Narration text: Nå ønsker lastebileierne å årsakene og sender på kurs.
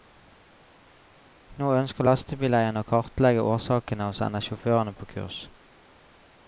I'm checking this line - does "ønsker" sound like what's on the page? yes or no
yes